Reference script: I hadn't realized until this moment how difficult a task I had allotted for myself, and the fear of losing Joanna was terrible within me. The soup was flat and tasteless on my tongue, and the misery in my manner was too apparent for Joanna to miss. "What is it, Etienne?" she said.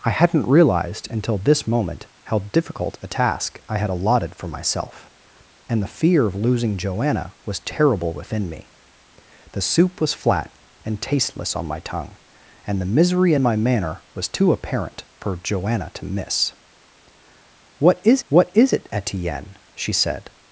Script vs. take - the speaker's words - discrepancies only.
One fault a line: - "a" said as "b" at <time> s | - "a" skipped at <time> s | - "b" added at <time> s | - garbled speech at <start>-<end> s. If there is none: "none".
- "what is" added at 18.3 s